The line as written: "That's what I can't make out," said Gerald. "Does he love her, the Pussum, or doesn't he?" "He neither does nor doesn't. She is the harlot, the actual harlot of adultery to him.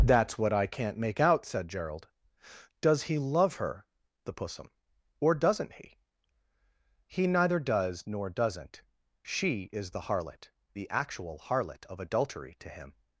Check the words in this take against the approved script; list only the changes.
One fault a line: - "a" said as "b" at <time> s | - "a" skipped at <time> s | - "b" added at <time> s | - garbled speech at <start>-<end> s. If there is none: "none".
none